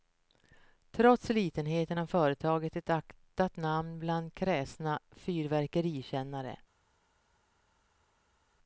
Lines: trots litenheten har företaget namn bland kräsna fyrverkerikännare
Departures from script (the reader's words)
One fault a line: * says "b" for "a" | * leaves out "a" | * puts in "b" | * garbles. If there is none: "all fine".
* puts in "ett aktat"